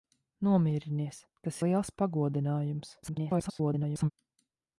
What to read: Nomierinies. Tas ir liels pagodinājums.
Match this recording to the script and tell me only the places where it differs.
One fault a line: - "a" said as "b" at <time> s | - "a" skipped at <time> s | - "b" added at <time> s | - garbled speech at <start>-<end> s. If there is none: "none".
- "ir" skipped at 1.6 s
- garbled speech at 3.0-4.1 s